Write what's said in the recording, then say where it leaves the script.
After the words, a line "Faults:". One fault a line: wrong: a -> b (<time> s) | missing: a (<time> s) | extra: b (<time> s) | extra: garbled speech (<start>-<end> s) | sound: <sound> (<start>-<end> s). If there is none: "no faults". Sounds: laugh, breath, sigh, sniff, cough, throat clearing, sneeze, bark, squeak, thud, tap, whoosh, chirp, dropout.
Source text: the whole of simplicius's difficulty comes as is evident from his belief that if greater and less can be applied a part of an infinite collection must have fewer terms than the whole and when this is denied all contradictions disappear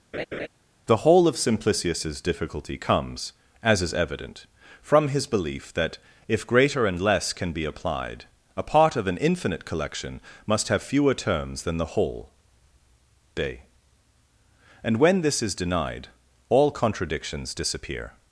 the whole of simplicius's difficulty comes as is evident from his belief that if greater and less can be applied a part of an infinite collection must have fewer terms than the whole day and when this is denied all contradictions disappear
Faults:
sound: laugh (0.1-0.5 s)
extra: day (13.3 s)